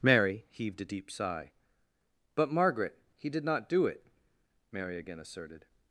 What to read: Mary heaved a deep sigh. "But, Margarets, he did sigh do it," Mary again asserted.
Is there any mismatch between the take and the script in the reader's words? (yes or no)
yes